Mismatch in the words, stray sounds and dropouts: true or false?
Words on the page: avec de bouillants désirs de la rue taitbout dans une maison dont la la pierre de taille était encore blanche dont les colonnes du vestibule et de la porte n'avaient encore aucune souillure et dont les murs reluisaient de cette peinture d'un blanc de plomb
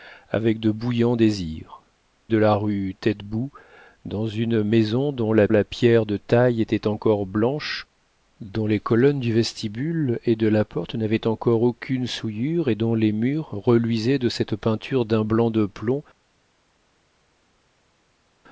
false